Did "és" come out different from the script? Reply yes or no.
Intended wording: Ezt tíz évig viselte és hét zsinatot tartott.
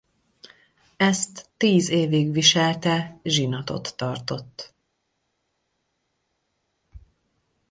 yes